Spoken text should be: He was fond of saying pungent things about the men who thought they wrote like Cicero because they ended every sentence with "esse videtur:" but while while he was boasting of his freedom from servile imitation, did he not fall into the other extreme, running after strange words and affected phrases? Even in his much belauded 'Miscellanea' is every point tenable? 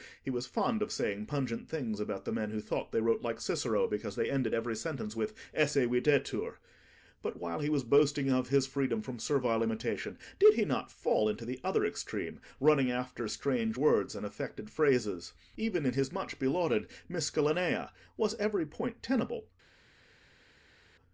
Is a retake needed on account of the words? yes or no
yes